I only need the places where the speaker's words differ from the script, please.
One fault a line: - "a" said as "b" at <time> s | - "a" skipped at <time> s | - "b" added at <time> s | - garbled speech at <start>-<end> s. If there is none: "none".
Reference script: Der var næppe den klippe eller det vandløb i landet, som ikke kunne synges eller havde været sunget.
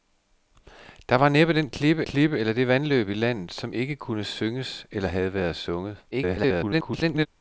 - "klippe" added at 2.0 s
- garbled speech at 6.1-7.3 s